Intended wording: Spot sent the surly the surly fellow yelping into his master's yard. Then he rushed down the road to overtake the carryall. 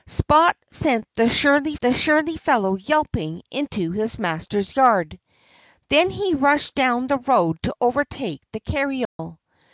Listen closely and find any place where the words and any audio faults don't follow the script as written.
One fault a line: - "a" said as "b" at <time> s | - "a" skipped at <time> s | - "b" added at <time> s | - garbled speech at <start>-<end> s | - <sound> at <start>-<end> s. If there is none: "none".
- dropout at 9.0-9.2 s